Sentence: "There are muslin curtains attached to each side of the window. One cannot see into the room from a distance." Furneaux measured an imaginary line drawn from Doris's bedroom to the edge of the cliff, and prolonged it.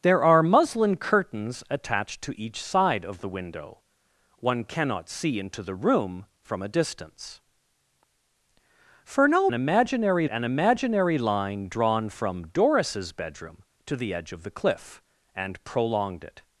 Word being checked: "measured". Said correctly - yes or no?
no